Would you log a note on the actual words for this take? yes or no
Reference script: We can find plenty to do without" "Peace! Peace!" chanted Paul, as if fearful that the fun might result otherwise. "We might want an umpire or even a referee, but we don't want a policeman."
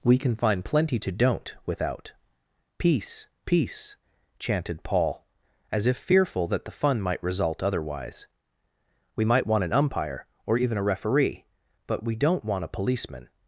yes